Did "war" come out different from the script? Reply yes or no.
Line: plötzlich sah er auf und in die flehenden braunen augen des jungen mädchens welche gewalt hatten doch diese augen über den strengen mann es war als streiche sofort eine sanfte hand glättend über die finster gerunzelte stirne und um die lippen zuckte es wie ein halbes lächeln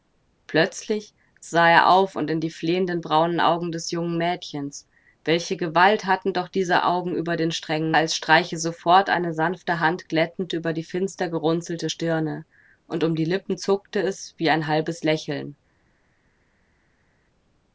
yes